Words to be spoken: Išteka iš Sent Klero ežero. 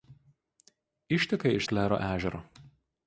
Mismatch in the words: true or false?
true